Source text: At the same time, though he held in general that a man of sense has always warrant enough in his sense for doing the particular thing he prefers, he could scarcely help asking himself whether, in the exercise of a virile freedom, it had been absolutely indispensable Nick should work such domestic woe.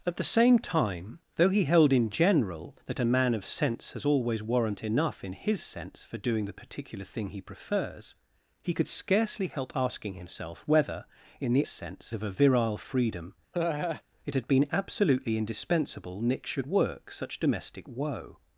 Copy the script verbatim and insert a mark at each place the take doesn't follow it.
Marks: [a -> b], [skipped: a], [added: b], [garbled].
At the same time, though he held in general that a man of sense has always warrant enough in his sense for doing the particular thing he prefers, he could scarcely help asking himself whether, in the [exercise -> sense] of a virile freedom, it had been absolutely indispensable Nick should work such domestic woe.